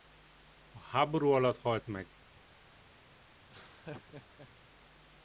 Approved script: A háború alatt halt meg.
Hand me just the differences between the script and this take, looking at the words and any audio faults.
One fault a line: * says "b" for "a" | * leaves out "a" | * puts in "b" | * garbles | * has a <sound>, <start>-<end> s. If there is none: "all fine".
* has a laugh, 3.4-4.5 s